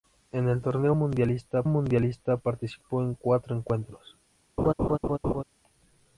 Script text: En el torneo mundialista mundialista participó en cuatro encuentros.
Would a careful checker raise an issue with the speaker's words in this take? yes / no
no